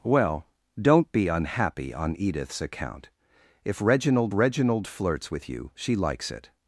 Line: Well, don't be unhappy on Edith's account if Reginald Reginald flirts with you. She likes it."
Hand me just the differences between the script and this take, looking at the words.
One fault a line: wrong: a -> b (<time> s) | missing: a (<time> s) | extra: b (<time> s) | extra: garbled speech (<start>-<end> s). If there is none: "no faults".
no faults